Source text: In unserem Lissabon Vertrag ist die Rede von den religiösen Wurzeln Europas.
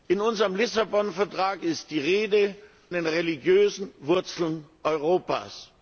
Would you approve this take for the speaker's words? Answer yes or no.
no